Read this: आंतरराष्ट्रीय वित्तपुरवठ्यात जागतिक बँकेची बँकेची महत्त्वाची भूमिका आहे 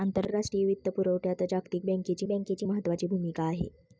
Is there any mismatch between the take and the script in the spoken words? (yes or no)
no